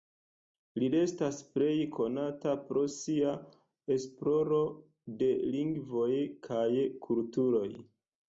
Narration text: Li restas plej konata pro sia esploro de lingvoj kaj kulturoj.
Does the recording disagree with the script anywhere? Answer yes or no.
no